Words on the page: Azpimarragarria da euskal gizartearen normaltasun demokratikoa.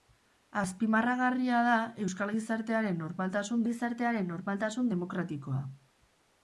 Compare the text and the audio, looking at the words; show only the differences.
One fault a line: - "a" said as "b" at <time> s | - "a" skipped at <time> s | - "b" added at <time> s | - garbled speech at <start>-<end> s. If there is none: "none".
- "gizartearen normaltasun" added at 3.7 s